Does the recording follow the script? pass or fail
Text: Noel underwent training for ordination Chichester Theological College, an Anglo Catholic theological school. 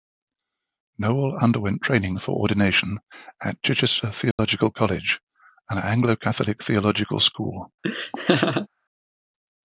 fail